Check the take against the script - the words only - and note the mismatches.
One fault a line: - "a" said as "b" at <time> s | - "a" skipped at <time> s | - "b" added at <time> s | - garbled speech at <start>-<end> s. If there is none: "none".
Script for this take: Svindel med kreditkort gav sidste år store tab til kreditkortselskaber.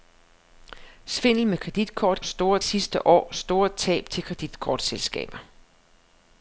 - "gav" said as "store" at 2.2 s